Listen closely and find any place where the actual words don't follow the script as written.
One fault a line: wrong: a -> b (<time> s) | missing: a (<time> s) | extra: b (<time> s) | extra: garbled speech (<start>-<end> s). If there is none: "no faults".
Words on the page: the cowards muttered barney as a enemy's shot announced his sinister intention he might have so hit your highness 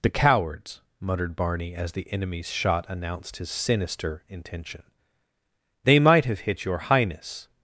wrong: a -> the (1.9 s)
wrong: he -> they (5.8 s)
missing: so (6.4 s)